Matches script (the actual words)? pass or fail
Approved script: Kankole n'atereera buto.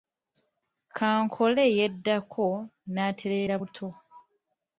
fail